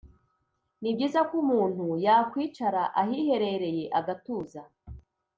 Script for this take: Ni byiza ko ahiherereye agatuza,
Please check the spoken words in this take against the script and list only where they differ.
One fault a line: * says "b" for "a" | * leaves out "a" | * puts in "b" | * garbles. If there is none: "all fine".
* puts in "umuntu yakwicara"